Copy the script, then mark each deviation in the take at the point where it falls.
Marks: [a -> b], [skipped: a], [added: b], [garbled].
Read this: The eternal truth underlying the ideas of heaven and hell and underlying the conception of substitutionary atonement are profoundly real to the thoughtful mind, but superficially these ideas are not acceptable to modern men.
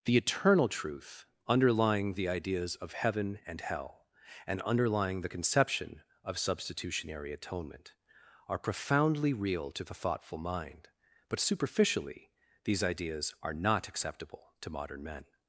The eternal truth underlying the ideas of heaven and hell and underlying the conception of substitutionary atonement are profoundly real to the thoughtful mind, but superficially these ideas are not acceptable to modern men.